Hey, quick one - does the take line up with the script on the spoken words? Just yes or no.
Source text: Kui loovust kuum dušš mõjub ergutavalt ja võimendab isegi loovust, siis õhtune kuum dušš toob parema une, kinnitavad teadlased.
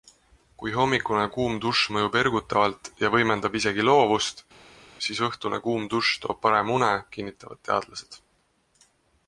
no